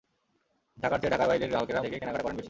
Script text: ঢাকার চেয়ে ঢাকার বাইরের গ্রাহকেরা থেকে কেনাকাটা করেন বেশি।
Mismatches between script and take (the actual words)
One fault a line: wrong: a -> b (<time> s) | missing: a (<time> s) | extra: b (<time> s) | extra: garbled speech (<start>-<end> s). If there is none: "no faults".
no faults